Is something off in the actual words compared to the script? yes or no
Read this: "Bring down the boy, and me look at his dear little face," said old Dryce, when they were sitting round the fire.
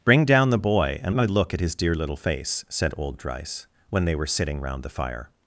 no